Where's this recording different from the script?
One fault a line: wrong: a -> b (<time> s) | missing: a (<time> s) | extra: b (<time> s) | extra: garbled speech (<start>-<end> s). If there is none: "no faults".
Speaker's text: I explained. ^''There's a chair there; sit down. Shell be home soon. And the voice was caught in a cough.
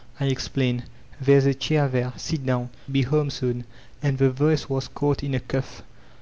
missing: Shell (2.7 s)